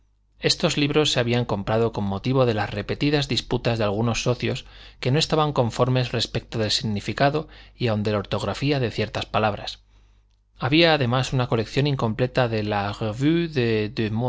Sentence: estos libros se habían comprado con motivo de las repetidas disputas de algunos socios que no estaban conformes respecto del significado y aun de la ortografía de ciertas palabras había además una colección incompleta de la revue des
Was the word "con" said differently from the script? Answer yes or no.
no